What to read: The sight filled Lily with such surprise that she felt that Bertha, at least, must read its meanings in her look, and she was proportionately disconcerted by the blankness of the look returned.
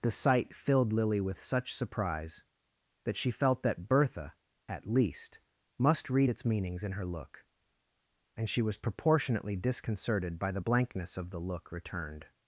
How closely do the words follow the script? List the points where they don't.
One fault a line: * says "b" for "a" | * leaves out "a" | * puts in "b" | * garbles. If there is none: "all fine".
all fine